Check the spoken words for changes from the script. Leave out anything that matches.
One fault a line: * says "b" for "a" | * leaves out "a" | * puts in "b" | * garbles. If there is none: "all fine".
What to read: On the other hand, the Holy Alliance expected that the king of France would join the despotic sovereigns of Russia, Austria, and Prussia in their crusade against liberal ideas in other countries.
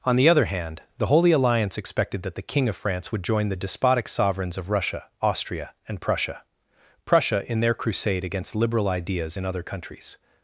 * puts in "Prussia"